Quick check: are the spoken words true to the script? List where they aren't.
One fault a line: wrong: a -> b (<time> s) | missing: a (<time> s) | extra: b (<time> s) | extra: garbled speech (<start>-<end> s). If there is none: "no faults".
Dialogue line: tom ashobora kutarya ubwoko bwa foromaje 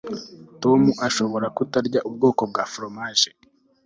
no faults